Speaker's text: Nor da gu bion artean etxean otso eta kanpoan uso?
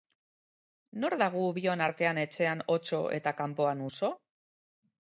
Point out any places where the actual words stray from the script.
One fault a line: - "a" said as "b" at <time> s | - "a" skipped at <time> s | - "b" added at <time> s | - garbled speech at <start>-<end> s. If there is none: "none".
none